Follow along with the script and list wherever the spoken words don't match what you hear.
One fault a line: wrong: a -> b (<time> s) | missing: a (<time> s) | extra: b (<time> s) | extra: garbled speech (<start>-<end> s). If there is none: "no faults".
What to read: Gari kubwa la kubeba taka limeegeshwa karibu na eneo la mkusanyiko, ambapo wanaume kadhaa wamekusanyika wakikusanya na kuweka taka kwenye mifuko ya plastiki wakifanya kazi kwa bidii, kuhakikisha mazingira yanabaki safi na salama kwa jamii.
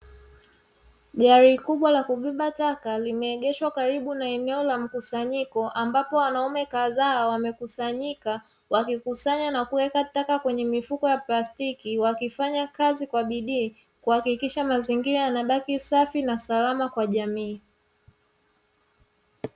no faults